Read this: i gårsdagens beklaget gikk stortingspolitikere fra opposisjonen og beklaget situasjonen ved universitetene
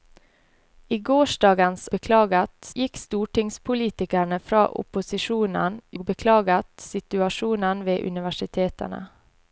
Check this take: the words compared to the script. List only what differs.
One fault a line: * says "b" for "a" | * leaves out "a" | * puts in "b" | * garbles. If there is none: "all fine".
all fine